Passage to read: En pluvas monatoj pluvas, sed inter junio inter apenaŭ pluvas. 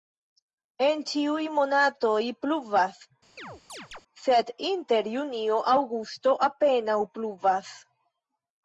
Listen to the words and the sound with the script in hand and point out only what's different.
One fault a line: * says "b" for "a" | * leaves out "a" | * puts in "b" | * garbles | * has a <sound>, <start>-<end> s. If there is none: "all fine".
* says "ĉiuj" for "pluvas"
* has a chirp, 3.4-4.0 s
* says "aŭgusto" for "inter"